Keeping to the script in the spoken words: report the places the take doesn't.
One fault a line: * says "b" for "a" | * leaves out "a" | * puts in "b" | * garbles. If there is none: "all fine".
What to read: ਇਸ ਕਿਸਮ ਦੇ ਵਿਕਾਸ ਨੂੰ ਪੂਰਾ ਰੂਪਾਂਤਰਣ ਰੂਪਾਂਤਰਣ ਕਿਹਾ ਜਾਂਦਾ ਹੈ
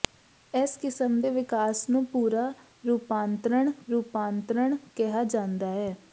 all fine